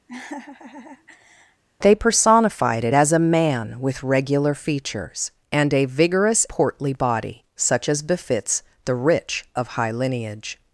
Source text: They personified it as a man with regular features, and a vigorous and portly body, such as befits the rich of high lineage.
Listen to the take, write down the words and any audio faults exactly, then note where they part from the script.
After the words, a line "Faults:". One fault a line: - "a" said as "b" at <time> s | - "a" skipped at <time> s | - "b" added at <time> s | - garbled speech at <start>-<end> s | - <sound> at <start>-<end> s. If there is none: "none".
They personified it as a man with regular features, and a vigorous portly body, such as befits the rich of high lineage.
Faults:
- laugh at 0.1-1.6 s
- "and" skipped at 6.5 s